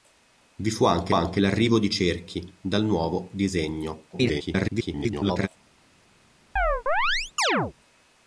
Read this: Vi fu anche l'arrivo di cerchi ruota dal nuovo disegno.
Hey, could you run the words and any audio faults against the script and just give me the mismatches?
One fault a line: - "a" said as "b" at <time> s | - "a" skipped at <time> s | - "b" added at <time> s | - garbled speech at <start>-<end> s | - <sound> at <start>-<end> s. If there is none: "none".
- "anche" added at 1.1 s
- "ruota" skipped at 2.5 s
- garbled speech at 4.1-5.5 s
- chirp at 6.6-7.7 s